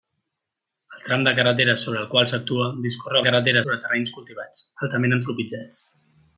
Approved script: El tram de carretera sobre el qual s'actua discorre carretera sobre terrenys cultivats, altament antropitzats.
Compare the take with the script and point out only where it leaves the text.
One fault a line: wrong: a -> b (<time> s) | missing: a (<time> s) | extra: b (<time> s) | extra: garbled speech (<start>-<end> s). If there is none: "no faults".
no faults